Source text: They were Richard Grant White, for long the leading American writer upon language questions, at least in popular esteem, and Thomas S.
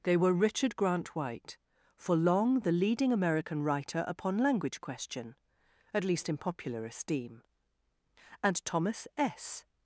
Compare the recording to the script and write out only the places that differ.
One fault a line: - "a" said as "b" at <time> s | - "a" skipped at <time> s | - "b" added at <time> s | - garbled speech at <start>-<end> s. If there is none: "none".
- "questions" said as "question" at 4.8 s